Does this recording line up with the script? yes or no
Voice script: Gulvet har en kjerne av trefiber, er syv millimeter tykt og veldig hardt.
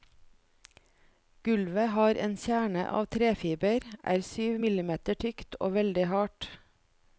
yes